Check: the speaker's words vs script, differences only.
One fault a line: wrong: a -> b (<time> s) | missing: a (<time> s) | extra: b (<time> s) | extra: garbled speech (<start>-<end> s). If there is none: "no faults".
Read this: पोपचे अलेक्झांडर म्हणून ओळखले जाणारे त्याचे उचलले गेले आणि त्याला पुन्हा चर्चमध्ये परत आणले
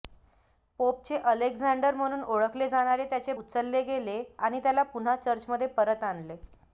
no faults